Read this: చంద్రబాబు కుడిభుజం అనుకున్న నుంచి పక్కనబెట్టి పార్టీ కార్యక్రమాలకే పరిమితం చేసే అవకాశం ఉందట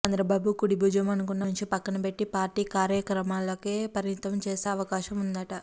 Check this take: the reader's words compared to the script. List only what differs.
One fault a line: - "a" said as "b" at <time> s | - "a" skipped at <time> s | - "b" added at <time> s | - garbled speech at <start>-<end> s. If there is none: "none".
none